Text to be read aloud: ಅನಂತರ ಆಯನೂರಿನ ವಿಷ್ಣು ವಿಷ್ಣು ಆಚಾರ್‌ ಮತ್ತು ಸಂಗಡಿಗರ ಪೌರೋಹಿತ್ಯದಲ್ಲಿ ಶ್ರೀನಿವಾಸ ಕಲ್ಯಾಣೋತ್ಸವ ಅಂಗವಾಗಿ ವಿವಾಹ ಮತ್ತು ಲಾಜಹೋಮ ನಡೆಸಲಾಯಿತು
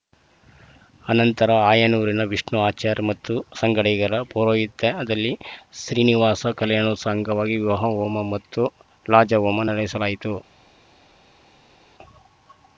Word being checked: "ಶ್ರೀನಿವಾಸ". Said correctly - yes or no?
yes